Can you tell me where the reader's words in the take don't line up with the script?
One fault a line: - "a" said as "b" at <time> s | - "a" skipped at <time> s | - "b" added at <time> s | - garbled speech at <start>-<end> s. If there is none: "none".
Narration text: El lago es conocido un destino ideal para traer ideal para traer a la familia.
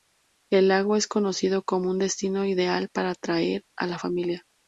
- "como" added at 1.6 s
- "ideal para traer" skipped at 3.6 s